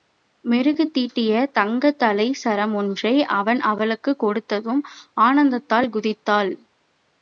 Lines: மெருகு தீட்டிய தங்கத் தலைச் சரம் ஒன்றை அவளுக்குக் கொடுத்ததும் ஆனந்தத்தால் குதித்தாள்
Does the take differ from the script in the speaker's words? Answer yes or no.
yes